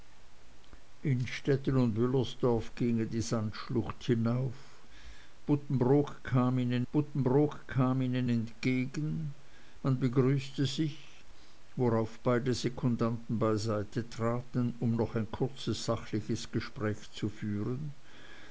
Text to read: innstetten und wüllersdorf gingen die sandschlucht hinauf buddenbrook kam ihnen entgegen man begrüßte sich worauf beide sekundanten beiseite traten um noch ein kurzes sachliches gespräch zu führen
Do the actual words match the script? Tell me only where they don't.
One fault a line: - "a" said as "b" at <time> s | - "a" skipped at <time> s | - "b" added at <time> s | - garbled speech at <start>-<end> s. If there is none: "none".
- "buddenbrook kam ihnen" added at 6.9 s